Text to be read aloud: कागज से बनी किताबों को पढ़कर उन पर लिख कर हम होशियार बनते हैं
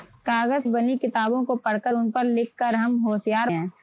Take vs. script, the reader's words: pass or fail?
fail